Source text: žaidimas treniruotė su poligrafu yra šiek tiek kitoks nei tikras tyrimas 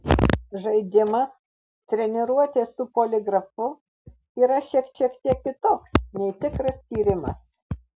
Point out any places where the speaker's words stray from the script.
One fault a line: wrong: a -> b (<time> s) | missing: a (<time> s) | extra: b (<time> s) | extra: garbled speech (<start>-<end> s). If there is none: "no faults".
extra: šiek (5.0 s)